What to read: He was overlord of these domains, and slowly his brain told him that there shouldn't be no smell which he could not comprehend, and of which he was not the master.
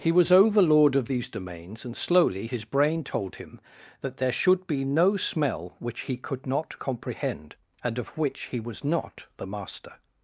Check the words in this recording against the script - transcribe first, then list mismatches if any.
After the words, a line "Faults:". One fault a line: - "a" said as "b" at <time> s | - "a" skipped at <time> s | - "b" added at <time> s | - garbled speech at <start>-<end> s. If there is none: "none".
He was overlord of these domains, and slowly his brain told him that there should be no smell which he could not comprehend, and of which he was not the master.
Faults:
- "shouldn't" said as "should" at 4.3 s